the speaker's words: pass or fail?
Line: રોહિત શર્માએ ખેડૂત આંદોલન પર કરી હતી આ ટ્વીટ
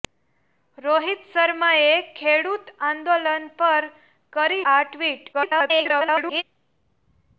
fail